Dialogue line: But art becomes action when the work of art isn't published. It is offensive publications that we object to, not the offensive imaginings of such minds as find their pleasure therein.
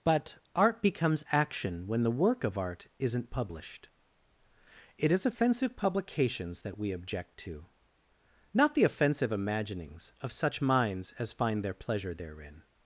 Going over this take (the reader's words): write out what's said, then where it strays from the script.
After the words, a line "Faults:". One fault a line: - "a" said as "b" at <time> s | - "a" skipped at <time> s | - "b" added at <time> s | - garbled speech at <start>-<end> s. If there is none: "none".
But art becomes action when the work of art isn't published. It is offensive publications that we object to, not the offensive imaginings of such minds as find their pleasure therein.
Faults:
none